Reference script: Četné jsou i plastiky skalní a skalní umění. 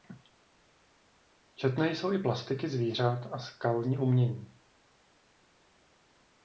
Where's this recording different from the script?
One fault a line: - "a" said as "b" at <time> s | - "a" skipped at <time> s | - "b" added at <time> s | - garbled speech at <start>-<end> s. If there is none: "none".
- "skalní" said as "zvířat" at 2.7 s